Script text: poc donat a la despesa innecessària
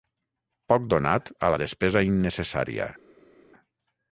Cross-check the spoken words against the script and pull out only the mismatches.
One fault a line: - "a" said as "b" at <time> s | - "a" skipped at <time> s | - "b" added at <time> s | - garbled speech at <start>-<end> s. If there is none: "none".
none